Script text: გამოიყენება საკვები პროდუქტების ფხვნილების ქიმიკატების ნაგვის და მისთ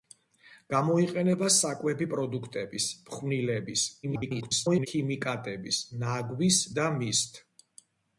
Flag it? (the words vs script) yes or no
yes